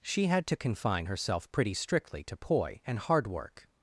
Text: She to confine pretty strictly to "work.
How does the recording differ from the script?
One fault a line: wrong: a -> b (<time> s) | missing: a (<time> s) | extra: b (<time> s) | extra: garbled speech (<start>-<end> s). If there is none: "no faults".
extra: had (0.2 s)
extra: herself (1.0 s)
extra: poi and hard (2.4 s)